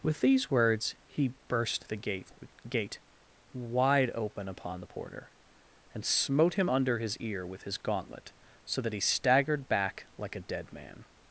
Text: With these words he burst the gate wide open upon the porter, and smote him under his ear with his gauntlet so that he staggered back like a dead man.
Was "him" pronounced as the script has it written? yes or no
yes